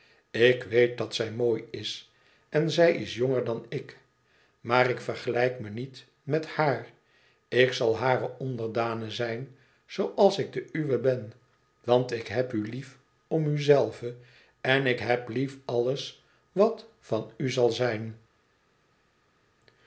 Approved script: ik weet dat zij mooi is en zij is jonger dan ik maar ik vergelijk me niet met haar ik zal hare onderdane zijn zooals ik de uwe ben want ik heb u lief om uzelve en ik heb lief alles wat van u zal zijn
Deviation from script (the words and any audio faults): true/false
false